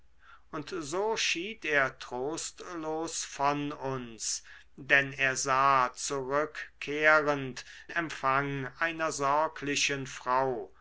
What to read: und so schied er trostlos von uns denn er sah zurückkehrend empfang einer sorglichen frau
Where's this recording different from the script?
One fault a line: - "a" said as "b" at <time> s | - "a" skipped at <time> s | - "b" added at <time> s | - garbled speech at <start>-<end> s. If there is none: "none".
none